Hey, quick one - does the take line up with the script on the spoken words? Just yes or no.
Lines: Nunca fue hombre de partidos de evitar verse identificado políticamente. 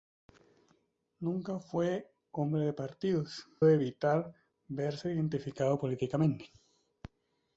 yes